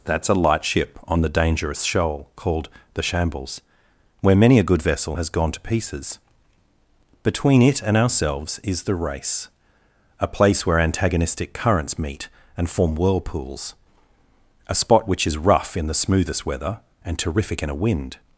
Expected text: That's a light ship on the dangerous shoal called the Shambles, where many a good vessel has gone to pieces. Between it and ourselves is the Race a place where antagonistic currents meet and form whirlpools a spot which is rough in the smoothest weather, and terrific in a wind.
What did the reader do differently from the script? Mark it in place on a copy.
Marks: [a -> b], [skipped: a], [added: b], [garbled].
That's a light ship on the dangerous shoal called the Shambles, where many a good vessel has gone to pieces. Between it and ourselves is the Race a place where antagonistic currents meet and form whirlpools a spot which is rough in the smoothest weather, and terrific in a wind.